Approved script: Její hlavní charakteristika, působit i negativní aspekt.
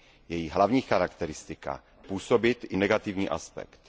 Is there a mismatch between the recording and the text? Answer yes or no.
no